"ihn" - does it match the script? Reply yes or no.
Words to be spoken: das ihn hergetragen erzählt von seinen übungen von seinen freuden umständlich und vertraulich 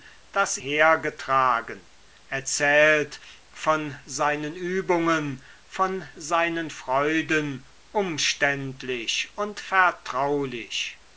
no